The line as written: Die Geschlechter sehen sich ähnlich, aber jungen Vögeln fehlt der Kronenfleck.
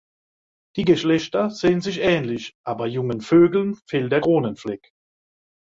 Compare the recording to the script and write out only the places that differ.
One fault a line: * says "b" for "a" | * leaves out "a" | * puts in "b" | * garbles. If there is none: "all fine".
all fine